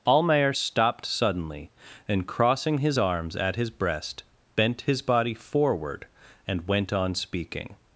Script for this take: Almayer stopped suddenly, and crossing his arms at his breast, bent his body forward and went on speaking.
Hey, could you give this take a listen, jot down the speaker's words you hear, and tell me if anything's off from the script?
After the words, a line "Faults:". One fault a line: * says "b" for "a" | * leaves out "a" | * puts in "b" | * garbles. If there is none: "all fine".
Almayer stopped suddenly, and crossing his arms at his breast, bent his body forward and went on speaking.
Faults:
all fine